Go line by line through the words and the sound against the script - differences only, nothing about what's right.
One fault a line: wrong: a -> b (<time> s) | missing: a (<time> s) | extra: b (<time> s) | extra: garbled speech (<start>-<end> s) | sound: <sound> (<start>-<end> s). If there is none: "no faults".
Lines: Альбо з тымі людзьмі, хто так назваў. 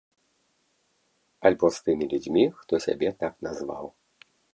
extra: сябе (2.9 s)